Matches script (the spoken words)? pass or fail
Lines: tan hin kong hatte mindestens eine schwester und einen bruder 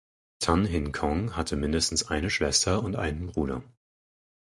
pass